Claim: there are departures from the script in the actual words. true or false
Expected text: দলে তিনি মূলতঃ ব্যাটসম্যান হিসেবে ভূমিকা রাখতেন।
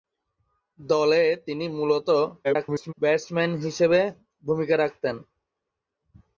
true